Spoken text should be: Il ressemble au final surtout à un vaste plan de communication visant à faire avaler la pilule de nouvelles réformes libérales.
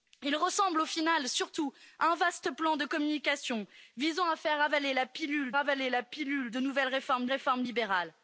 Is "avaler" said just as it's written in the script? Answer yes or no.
yes